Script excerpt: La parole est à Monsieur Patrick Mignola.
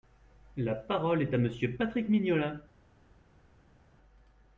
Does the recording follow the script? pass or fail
pass